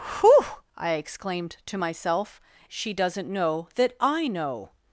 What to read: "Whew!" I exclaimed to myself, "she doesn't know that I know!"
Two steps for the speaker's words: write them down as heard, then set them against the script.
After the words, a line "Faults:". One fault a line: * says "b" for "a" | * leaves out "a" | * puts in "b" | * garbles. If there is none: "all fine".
"Whew!" I exclaimed to myself, "she doesn't know that I know!"
Faults:
all fine